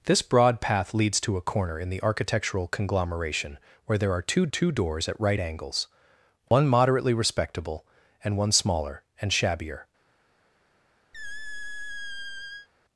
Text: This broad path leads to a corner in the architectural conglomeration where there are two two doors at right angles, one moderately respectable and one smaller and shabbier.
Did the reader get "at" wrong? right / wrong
right